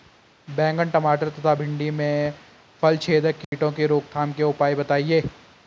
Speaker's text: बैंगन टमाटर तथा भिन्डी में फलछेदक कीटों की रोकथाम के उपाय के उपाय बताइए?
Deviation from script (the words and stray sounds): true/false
true